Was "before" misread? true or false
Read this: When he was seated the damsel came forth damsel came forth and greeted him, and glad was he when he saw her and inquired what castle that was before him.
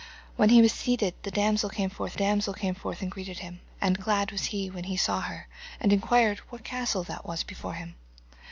false